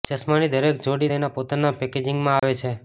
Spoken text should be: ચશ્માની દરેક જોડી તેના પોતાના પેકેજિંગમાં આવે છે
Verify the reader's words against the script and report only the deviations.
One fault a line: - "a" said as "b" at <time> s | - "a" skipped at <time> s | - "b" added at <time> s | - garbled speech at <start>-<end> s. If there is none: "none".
none